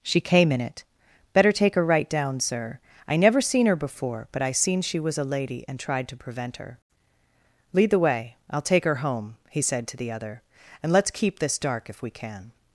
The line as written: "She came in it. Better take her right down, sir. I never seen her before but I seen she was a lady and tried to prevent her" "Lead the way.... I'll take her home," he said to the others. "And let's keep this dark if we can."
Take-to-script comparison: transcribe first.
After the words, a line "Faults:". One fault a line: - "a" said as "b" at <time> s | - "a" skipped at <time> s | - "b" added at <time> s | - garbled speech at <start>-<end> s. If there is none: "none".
"She came in it. Better take her right down, sir. I never seen her before but I seen she was a lady and tried to prevent her" "Lead the way.... I'll take her home," he said to the other. "And let's keep this dark if we can."
Faults:
- "others" said as "other" at 10.1 s